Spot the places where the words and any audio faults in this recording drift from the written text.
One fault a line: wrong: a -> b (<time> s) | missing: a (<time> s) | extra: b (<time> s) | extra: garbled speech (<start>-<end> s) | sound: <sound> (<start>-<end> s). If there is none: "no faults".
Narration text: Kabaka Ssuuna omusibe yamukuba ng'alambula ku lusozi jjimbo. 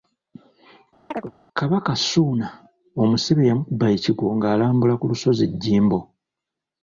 sound: chirp (1.1-1.3 s)
extra: ekigwo (4.0 s)